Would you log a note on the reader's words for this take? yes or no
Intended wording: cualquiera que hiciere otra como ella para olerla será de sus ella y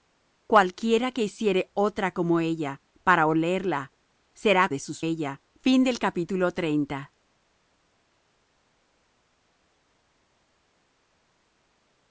no